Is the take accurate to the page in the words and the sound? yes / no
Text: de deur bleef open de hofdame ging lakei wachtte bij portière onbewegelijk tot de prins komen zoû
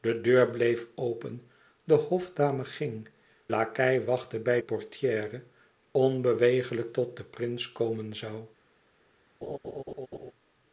no